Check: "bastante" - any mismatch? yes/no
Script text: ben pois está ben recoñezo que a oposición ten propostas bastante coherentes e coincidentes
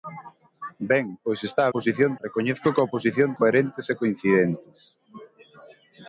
yes